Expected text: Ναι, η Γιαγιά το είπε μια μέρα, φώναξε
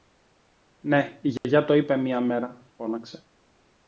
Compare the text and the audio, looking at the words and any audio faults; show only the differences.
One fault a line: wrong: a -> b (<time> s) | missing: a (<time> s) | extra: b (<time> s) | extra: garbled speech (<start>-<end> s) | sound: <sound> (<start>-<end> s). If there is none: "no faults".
sound: dropout (1.4-1.4 s)